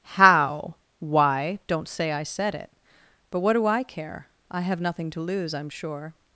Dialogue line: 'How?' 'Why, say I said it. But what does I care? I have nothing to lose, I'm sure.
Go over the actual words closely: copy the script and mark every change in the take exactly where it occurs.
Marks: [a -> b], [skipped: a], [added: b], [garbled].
'How?' 'Why, [added: don't] say I said it. But what [does -> do] I care? I have nothing to lose, I'm sure.